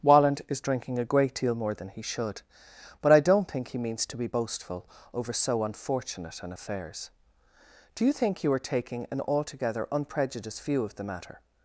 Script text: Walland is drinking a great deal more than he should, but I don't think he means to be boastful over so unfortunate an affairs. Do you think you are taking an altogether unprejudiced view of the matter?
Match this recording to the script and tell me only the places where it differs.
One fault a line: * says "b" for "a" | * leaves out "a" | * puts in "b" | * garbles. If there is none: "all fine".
all fine